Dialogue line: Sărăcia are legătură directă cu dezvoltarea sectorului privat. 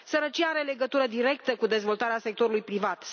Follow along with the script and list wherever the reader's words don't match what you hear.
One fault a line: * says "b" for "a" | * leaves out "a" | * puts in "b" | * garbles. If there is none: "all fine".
all fine